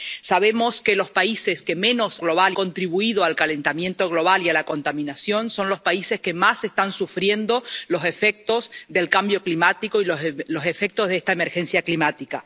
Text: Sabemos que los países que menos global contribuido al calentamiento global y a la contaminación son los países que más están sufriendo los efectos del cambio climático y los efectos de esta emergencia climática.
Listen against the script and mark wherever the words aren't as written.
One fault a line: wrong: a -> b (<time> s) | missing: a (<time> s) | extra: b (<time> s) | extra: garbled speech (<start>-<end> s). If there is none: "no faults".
no faults